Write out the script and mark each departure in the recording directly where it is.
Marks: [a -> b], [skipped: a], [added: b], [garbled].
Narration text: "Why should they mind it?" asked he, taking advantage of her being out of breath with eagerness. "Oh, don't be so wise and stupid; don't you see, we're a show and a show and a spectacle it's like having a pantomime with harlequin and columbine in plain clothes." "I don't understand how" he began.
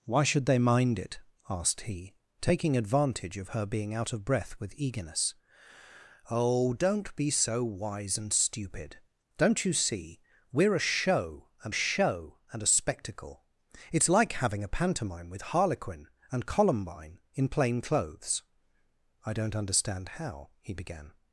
"Why should they mind it?" asked he, taking advantage of her being out of breath with eagerness. "Oh, don't be so wise and stupid; don't you see, we're a show and a show and a spectacle it's like having a pantomime with harlequin and columbine in plain clothes." "I don't understand how" he began.